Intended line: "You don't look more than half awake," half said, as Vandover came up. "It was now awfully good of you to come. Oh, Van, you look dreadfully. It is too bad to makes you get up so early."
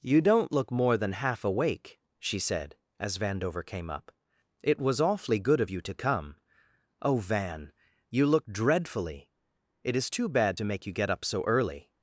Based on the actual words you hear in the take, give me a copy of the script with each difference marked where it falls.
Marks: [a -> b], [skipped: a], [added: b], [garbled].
"You don't look more than half awake," [half -> she] said, as Vandover came up. "It was [skipped: now] awfully good of you to come. Oh, Van, you look dreadfully. It is too bad to [makes -> make] you get up so early."